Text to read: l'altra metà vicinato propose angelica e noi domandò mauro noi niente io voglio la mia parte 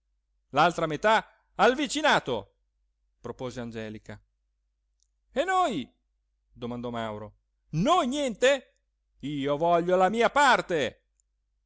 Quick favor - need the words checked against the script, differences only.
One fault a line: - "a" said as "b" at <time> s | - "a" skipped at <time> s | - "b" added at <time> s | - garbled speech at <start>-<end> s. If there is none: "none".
- "al" added at 1.6 s